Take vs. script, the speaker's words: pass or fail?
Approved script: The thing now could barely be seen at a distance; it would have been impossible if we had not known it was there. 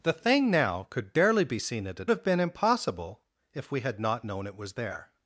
fail